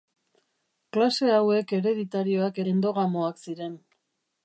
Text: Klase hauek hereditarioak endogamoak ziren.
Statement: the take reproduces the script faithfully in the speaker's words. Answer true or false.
true